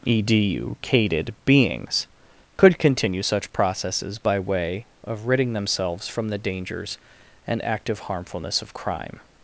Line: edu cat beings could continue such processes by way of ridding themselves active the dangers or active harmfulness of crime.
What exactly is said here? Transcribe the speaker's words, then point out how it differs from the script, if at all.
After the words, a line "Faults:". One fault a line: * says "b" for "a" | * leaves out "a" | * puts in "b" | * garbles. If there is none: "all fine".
edu cated beings could continue such processes by way of ridding themselves from the dangers and active harmfulness of crime.
Faults:
* says "cated" for "cat"
* says "from" for "active"
* says "and" for "or"